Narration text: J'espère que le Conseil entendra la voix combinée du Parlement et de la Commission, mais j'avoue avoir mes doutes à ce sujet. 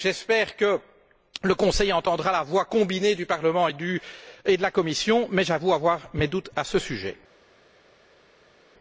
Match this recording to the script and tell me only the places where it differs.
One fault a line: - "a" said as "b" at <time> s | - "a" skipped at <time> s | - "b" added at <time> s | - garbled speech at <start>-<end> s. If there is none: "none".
none